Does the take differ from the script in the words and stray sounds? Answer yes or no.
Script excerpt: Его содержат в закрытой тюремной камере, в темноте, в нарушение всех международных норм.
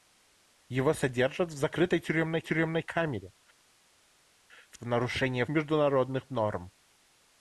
yes